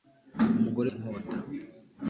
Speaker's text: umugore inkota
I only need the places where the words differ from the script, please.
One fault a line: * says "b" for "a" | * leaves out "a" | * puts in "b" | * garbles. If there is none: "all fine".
all fine